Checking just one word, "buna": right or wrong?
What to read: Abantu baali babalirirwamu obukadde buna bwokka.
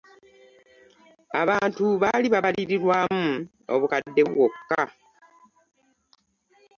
wrong